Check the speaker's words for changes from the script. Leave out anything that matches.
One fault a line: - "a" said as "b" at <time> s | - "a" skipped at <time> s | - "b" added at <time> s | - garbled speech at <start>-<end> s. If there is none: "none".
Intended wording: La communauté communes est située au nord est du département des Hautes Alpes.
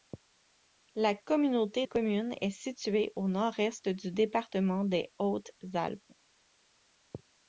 none